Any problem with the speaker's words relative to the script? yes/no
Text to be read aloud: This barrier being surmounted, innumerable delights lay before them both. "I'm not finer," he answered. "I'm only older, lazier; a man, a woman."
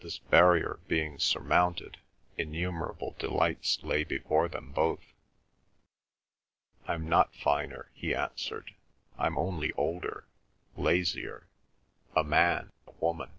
no